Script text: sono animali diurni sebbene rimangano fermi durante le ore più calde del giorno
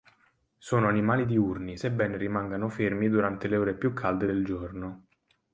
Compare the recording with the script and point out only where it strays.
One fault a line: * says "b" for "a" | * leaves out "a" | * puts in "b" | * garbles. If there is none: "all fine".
all fine